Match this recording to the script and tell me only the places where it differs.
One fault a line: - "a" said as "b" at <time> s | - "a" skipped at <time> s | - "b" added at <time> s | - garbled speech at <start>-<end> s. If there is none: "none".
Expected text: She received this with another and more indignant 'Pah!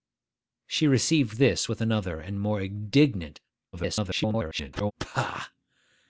- garbled speech at 3.7-4.9 s